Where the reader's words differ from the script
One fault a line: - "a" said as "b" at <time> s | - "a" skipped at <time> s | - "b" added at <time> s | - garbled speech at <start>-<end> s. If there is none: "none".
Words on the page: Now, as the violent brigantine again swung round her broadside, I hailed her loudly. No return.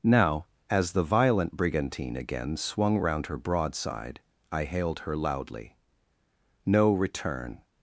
none